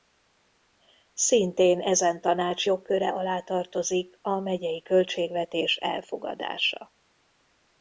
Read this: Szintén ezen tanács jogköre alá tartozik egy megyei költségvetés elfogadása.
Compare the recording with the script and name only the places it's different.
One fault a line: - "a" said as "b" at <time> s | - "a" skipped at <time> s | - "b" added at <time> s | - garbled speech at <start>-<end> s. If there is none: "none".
- "egy" said as "a" at 4.2 s